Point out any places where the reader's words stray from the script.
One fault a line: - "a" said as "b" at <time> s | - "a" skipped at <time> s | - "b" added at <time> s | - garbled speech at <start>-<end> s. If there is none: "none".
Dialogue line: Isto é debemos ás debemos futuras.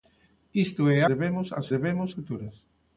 none